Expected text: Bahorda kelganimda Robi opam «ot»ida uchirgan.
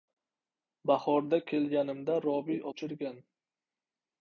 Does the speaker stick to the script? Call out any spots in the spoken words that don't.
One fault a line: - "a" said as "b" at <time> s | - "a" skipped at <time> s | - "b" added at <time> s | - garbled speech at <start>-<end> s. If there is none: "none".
- "opam ot»ida" skipped at 2.6 s